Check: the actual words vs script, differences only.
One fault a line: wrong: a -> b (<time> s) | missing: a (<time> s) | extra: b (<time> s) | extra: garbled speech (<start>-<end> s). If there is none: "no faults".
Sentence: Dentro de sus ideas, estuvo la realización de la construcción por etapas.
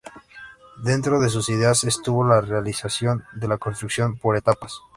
no faults